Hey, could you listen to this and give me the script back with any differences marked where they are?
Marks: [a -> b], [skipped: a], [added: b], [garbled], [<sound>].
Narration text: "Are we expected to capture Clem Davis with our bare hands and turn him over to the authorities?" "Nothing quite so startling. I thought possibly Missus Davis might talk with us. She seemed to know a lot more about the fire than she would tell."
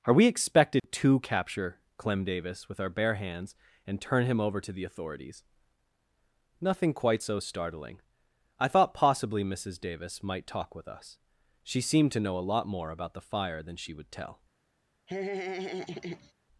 "Are we expected [dropout] to capture Clem Davis with our bare hands and turn him over to the authorities?" "Nothing quite so startling. I thought possibly Missus Davis might talk with us. She seemed to know a lot more about the fire than she would tell." [laugh]